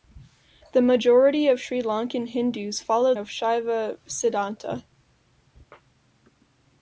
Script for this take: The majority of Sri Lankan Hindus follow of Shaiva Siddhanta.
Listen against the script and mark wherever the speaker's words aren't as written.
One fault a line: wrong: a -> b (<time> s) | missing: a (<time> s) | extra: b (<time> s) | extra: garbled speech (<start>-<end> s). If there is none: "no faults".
no faults